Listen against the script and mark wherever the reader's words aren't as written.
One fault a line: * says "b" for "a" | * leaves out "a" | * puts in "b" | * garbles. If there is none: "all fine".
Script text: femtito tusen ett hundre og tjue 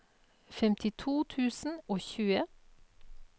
* leaves out "ett hundre"